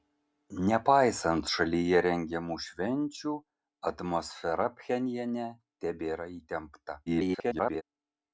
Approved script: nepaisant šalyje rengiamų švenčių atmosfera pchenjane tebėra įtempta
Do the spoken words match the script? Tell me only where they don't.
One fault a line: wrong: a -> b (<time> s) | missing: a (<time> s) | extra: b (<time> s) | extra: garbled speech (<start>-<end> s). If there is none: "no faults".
extra: garbled speech (7.1-7.8 s)